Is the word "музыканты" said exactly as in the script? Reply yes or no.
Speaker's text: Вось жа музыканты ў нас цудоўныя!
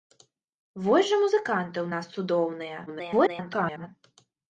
yes